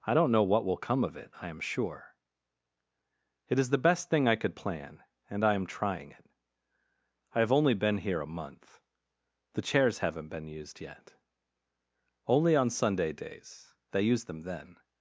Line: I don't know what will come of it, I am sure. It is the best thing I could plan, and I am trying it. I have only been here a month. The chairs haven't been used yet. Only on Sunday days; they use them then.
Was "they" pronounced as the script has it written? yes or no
yes